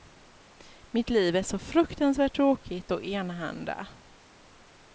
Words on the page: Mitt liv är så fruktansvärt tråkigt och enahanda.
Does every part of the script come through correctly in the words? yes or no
yes